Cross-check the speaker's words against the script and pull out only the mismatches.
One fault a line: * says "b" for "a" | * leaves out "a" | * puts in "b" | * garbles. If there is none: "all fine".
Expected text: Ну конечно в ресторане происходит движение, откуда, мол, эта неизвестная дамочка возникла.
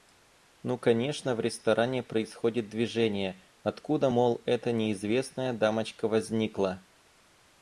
all fine